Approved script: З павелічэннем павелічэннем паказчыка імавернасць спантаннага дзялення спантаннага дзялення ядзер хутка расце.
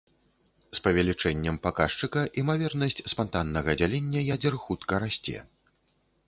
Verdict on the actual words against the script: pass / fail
fail